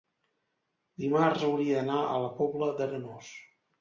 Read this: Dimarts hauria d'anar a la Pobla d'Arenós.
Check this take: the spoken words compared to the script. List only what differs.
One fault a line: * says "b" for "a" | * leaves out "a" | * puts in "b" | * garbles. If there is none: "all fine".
all fine